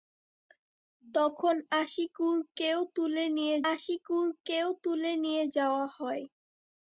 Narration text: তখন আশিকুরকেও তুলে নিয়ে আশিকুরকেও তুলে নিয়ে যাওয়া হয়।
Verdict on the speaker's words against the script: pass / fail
pass